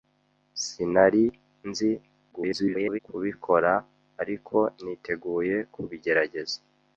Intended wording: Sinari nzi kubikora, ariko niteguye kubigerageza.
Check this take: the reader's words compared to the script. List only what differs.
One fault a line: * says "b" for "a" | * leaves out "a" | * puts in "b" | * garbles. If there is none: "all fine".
* garbles